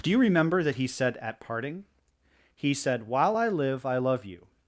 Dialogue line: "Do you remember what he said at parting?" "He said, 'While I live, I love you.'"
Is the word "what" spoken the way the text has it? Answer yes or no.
no